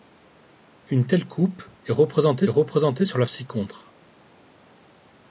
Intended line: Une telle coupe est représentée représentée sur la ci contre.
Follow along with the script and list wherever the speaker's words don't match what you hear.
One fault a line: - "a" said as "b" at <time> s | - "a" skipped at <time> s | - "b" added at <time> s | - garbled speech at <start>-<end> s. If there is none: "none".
none